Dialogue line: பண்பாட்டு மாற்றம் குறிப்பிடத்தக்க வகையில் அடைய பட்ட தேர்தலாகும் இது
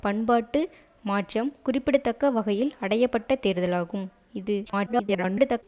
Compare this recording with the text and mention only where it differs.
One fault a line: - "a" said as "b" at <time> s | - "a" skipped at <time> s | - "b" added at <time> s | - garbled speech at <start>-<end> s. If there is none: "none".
- garbled speech at 4.7-5.6 s